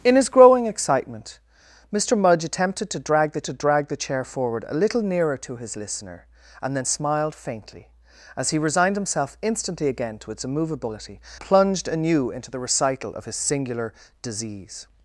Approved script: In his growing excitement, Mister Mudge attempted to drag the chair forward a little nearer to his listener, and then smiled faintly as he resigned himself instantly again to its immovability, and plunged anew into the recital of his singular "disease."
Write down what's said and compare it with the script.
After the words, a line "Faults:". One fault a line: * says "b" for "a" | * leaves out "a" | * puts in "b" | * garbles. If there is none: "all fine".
In his growing excitement, Mister Mudge attempted to drag the to drag the chair forward a little nearer to his listener, and then smiled faintly as he resigned himself instantly again to its immovability, plunged anew into the recital of his singular "disease."
Faults:
* puts in "to drag the"
* leaves out "and"